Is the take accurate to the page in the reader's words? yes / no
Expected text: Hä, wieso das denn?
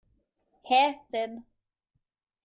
no